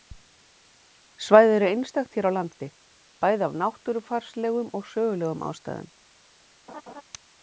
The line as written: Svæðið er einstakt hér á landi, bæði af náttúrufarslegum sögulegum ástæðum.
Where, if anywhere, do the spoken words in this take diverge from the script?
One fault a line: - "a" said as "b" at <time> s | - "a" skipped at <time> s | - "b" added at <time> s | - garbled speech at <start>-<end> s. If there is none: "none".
- "og" added at 4.8 s